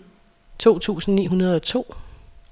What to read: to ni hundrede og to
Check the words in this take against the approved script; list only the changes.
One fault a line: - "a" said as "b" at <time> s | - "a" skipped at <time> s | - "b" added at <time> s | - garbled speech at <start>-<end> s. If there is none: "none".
- "tusind" added at 0.8 s